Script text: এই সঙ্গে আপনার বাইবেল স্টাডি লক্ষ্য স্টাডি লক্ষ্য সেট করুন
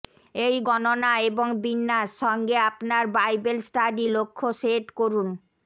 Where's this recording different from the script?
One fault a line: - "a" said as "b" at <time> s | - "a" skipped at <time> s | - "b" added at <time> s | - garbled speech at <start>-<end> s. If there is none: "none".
- "গণনা এবং বিন্যাস" added at 0.7 s
- "স্টাডি লক্ষ্য" skipped at 4.5 s